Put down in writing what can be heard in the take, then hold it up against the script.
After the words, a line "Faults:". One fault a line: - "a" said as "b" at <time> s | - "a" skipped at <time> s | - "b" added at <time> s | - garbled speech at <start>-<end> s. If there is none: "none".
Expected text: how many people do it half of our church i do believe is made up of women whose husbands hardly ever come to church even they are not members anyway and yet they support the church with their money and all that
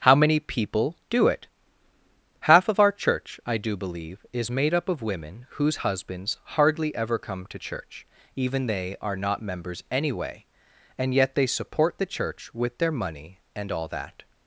how many people do it half of our church i do believe is made up of women whose husbands hardly ever come to church even they are not members anyway and yet they support the church with their money and all that
Faults:
none